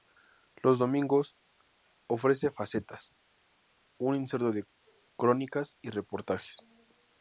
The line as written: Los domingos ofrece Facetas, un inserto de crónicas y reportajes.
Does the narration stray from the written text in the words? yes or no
no